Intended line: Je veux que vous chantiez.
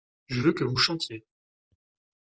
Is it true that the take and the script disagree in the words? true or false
false